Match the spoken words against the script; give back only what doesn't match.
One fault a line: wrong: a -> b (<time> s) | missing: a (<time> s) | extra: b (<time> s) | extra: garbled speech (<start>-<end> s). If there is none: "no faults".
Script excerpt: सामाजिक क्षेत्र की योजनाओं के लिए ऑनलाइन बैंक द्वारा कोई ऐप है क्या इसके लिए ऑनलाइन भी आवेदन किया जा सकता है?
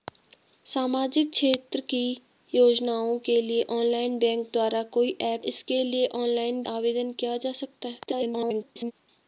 missing: है क्या (5.4 s)
missing: भी (6.6 s)
extra: garbled speech (8.1-8.9 s)